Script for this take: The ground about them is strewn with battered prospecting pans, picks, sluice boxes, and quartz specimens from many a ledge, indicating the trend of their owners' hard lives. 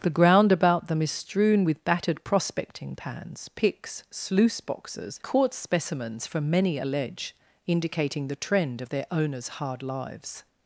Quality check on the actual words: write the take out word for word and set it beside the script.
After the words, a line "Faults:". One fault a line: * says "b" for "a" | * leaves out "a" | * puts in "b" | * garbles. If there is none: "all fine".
The ground about them is strewn with battered prospecting pans, picks, sluice boxes, quartz specimens from many a ledge, indicating the trend of their owners' hard lives.
Faults:
* leaves out "and"